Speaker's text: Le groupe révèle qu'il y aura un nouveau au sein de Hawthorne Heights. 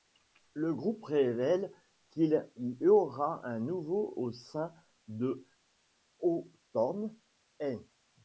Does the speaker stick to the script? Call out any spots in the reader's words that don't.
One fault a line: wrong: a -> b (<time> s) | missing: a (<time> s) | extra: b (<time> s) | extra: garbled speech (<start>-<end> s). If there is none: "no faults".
no faults